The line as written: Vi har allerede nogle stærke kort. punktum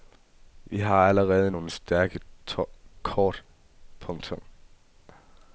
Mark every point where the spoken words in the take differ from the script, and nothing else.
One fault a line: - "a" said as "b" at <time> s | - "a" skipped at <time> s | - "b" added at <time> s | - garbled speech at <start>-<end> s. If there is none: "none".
none